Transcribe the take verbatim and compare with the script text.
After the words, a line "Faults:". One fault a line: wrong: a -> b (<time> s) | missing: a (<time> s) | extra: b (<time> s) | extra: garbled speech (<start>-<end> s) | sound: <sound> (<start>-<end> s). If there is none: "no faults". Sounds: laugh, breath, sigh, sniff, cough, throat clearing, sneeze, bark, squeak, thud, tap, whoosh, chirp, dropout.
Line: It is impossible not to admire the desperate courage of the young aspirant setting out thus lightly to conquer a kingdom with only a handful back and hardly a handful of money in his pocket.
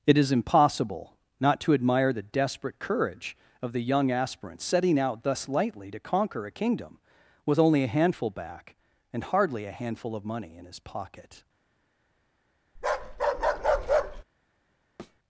It is impossible not to admire the desperate courage of the young aspirant setting out thus lightly to conquer a kingdom with only a handful back and hardly a handful of money in his pocket.
Faults:
sound: bark (12.8-14.2 s)
sound: thud (15.0-15.2 s)